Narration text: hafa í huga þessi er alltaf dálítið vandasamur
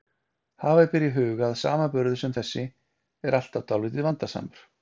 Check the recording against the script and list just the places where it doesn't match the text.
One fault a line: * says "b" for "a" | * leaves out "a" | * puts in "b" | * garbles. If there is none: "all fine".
* puts in "ber"
* puts in "að samanburður sem"